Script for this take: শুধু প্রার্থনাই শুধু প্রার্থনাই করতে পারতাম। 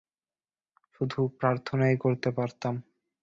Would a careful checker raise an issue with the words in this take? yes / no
yes